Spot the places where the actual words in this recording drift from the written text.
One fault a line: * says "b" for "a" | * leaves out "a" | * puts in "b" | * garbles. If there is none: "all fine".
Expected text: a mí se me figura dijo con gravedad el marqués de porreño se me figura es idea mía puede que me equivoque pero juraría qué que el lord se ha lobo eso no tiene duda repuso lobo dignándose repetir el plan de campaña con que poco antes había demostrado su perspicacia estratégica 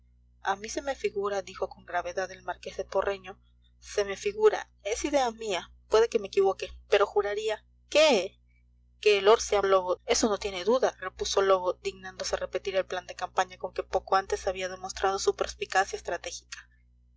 all fine